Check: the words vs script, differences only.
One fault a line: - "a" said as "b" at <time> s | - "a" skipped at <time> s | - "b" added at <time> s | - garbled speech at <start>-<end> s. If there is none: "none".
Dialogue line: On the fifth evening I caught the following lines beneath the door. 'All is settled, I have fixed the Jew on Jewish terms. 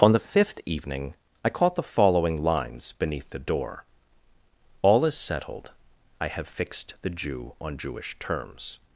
none